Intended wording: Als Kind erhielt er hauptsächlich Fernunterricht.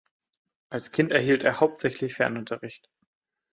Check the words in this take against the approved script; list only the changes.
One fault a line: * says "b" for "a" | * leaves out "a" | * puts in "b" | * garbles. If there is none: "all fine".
all fine